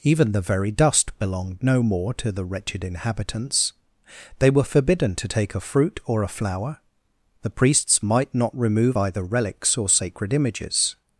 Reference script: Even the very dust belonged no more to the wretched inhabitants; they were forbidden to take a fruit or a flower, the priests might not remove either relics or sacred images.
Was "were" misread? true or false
false